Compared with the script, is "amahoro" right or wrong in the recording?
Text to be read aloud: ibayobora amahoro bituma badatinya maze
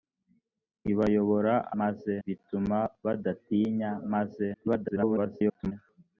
wrong